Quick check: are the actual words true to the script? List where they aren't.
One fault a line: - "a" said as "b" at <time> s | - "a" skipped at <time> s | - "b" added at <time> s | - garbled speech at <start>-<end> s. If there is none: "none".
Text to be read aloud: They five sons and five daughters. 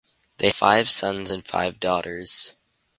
none